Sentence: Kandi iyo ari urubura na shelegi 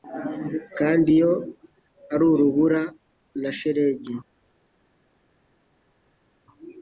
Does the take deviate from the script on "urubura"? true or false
false